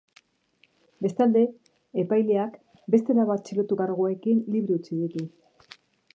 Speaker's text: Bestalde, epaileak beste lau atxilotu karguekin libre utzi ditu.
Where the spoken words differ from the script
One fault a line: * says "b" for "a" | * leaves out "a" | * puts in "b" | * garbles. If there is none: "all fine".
all fine